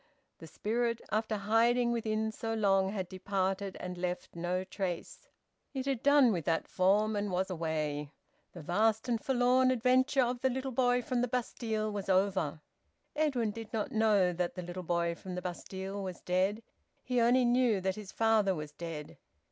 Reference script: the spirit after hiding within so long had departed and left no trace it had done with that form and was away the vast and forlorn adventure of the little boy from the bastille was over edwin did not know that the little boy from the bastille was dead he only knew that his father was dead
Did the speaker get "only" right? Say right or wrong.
right